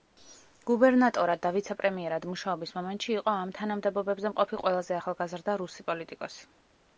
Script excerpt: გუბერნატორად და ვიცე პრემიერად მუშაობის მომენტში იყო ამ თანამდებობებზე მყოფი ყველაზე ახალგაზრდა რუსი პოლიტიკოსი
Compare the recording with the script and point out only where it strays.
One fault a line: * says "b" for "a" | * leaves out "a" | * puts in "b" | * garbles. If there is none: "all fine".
all fine